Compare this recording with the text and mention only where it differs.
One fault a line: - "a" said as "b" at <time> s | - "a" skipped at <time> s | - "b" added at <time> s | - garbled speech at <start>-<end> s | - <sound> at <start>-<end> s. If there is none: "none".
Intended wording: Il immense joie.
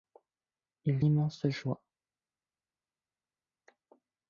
none